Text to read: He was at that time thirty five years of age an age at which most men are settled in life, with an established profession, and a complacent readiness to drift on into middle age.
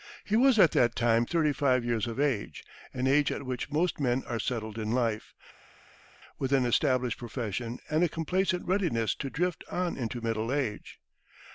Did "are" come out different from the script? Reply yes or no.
no